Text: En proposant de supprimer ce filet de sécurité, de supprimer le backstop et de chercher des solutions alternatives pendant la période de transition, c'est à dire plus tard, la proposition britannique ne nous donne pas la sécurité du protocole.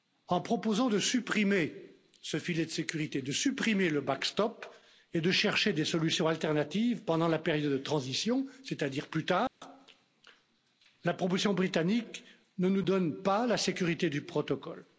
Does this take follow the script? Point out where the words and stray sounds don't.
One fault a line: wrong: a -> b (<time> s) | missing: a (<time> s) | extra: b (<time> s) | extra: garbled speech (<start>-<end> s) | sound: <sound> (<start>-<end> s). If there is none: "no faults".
sound: dropout (9.5-9.6 s)